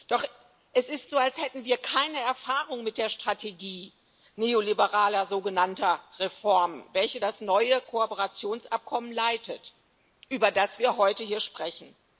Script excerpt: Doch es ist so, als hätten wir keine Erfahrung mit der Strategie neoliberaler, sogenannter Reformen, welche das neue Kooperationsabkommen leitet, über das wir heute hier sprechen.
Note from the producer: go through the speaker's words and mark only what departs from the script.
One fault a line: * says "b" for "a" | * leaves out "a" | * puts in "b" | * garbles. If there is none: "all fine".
all fine